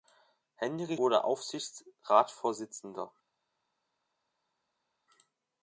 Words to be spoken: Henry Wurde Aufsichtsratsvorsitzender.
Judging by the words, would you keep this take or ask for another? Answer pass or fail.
pass